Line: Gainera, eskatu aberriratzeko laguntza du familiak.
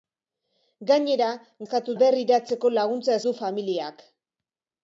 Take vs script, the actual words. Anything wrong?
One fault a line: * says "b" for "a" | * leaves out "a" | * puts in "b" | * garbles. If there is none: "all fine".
all fine